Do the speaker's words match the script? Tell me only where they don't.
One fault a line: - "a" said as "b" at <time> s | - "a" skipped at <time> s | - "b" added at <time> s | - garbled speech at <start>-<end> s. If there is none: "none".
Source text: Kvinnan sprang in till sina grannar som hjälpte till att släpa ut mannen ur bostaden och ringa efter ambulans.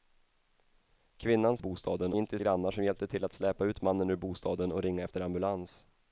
- "sprang" said as "bostaden" at 1.6 s
- "sina" skipped at 2.4 s